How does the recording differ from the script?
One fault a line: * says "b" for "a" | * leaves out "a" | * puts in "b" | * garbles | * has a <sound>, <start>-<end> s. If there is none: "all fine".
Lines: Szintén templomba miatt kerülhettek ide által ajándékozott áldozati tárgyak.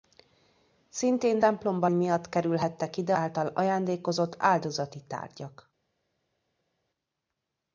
all fine